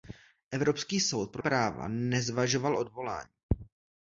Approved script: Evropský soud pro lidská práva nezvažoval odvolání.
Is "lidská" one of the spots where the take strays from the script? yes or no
yes